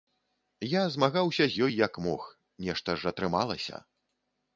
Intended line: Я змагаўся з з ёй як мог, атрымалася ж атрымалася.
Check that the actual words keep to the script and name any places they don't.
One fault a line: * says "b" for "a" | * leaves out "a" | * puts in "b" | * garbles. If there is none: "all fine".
* leaves out "з"
* says "нешта" for "атрымалася"